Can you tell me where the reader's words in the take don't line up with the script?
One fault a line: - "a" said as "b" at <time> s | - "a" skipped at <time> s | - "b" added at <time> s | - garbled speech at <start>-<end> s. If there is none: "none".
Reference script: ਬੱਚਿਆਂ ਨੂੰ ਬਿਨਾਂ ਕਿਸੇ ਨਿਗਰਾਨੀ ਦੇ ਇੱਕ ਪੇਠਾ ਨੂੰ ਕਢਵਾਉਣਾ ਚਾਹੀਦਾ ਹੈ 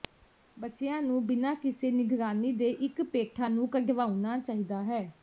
none